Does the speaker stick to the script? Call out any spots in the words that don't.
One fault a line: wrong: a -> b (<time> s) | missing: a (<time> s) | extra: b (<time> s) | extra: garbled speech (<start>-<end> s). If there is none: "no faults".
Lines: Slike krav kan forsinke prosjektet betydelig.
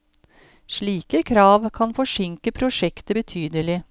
no faults